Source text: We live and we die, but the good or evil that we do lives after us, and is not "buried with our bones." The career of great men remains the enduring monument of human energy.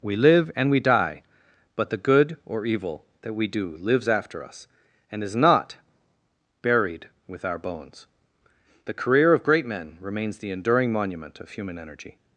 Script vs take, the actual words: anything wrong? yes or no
no